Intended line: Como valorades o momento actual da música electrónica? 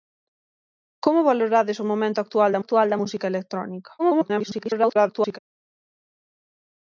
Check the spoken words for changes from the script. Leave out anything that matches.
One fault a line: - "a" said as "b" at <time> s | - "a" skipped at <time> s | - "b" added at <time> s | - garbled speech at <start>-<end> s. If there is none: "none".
- "actual da" added at 2.6 s
- garbled speech at 4.0-5.4 s